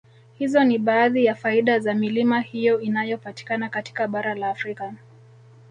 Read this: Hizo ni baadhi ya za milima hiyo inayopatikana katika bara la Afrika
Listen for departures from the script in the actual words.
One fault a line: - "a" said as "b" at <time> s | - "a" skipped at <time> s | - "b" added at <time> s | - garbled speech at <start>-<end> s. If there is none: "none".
- "faida" added at 1.4 s